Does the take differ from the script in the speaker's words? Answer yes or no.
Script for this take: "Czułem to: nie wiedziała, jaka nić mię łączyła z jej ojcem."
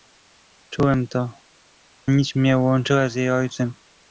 yes